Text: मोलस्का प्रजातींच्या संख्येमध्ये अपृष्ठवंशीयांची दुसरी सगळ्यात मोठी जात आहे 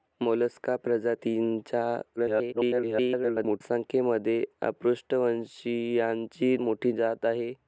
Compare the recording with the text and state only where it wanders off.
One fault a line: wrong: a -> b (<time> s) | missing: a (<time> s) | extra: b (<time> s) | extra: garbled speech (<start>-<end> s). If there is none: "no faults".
extra: garbled speech (2.2-3.6 s)
missing: दुसरी सगळ्यात (6.5 s)